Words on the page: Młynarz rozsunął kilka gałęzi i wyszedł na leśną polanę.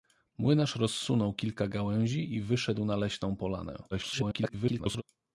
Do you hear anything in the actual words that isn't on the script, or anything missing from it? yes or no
yes